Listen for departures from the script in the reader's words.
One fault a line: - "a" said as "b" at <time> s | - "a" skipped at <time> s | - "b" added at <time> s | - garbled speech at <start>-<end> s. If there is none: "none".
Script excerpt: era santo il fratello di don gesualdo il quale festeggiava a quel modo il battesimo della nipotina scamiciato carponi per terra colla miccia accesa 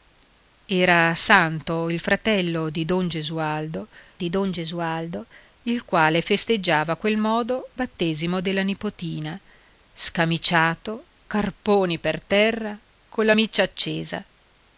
- "di don gesualdo" added at 4.2 s
- "il" skipped at 7.7 s